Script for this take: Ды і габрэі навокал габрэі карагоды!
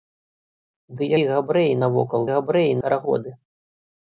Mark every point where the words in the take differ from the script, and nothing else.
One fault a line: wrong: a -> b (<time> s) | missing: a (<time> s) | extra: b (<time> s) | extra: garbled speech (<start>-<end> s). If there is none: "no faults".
no faults